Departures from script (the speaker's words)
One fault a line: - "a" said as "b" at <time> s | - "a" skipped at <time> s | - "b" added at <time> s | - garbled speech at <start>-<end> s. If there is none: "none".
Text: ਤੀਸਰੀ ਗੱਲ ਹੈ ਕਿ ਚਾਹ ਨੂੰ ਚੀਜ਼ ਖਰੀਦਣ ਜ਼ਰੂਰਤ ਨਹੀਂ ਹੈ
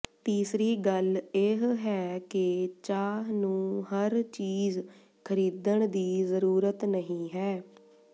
- "ਇਹ" added at 1.4 s
- "ਹਰ" added at 3.8 s
- "ਦੀ" added at 5.9 s